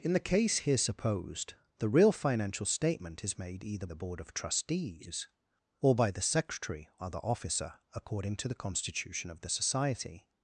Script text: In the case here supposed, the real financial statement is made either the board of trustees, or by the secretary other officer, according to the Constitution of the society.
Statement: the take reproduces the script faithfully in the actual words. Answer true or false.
true